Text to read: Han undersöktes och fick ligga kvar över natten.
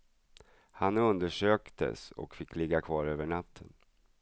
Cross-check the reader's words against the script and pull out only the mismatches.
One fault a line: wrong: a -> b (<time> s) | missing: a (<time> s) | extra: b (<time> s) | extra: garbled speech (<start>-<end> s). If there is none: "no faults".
no faults